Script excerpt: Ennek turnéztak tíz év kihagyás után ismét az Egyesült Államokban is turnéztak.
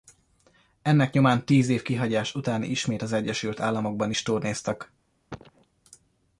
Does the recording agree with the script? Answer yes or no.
no